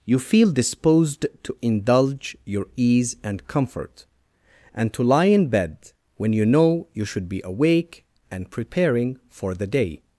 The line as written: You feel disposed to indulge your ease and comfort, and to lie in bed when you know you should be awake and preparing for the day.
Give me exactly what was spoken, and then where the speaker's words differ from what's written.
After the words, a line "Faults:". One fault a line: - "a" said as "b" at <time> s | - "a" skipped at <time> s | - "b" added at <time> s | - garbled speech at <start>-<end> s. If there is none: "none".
You feel disposed to indulge your ease and comfort, and to lie in bed when you know you should be awake and preparing for the day.
Faults:
none